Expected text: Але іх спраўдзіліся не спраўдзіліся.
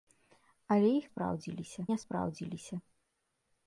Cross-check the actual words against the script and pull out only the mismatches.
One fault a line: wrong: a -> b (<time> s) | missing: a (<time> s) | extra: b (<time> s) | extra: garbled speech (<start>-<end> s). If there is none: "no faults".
no faults